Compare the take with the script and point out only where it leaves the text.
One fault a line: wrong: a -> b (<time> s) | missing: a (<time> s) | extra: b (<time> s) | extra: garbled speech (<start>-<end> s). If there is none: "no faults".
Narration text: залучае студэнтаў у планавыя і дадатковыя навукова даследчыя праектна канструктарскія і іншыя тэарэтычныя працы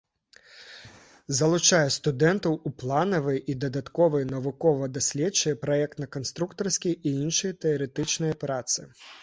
no faults